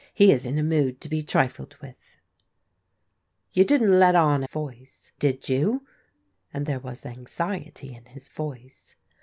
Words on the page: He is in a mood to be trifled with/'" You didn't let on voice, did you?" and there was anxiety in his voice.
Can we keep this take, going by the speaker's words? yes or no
yes